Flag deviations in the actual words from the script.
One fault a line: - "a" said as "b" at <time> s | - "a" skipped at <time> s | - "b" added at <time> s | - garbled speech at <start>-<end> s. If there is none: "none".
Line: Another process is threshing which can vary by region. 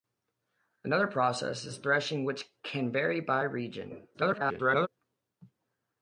- garbled speech at 4.1-4.9 s